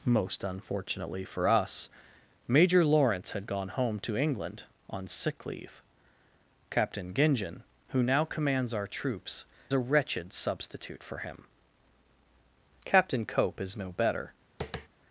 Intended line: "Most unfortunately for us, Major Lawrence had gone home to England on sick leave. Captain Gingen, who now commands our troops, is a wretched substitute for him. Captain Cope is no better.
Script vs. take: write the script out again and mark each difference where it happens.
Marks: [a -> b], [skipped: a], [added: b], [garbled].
"Most unfortunately for us, Major Lawrence had gone home to England on sick leave. Captain Gingen, who now commands our troops, [skipped: is] a wretched substitute for him. Captain Cope is no better.